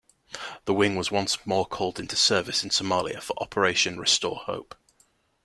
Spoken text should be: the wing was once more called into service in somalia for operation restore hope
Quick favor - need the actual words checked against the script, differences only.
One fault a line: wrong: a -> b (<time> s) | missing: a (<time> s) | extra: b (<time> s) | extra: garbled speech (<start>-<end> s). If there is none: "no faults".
no faults